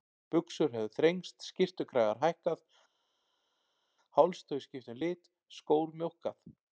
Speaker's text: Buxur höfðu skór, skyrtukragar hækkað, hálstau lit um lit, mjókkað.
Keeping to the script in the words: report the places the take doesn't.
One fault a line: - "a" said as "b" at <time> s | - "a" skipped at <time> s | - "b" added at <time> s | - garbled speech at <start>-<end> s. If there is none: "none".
- "skór" said as "þrengst" at 0.9 s
- "lit" said as "skipt" at 4.7 s
- "skór" added at 5.6 s